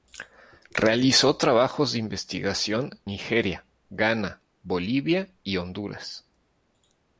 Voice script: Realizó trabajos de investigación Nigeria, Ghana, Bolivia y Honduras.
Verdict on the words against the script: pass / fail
pass